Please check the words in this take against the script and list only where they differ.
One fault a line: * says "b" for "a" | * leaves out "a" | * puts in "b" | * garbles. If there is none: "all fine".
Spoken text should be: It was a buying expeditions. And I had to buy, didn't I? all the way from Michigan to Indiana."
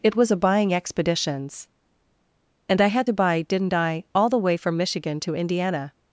all fine